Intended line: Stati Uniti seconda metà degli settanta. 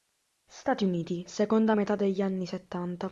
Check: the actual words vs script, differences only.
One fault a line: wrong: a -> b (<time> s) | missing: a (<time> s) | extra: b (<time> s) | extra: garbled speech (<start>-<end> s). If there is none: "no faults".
extra: anni (2.2 s)